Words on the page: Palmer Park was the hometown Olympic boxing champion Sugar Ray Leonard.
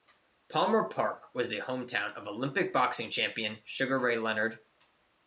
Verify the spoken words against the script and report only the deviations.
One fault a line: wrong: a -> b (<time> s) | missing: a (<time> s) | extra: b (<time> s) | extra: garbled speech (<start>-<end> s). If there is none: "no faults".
extra: of (2.1 s)